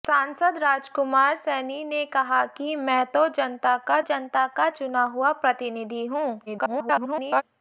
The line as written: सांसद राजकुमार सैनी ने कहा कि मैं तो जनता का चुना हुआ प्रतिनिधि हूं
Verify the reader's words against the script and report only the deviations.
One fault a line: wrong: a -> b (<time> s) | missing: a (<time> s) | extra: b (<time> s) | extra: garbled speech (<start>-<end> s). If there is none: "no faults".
extra: जनता का (4.0 s)
extra: garbled speech (6.5-7.4 s)